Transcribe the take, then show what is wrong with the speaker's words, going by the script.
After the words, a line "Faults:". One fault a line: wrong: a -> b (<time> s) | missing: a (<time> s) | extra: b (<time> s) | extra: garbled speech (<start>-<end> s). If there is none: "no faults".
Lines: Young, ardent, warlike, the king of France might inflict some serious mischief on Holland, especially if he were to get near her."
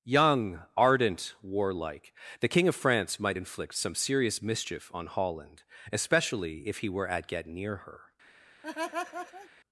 Young, ardent, warlike, the king of France might inflict some serious mischief on Holland, especially if he were at get near her."
Faults:
wrong: to -> at (7.1 s)